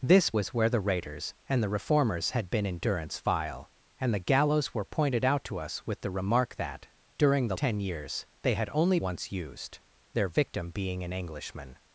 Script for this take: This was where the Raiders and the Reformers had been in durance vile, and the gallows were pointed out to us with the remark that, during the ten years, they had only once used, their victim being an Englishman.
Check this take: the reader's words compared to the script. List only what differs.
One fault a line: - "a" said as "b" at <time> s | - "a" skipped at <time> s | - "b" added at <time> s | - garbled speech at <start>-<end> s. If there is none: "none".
none